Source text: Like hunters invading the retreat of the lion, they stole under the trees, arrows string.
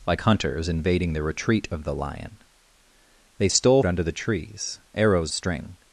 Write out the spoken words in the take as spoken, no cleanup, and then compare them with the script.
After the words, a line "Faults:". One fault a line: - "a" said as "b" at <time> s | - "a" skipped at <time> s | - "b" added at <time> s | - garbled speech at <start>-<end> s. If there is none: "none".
Like hunters invading the retreat of the lion, they stole under the trees, arrows string.
Faults:
none